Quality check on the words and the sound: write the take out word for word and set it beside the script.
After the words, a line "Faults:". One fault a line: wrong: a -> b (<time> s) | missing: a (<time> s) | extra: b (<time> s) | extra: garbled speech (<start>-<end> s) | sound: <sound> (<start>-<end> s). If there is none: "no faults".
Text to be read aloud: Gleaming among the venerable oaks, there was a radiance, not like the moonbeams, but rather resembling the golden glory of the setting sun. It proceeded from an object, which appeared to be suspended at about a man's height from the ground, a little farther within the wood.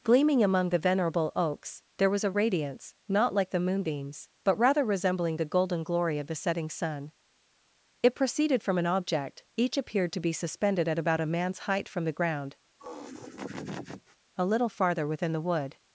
Gleaming among the venerable oaks, there was a radiance, not like the moonbeams, but rather resembling the golden glory of the setting sun. It proceeded from an object, each appeared to be suspended at about a man's height from the ground, a little farther within the wood.
Faults:
wrong: which -> each (9.6 s)
sound: laugh (12.8-14.2 s)